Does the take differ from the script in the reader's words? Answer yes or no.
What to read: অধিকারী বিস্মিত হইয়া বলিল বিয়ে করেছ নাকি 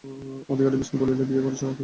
yes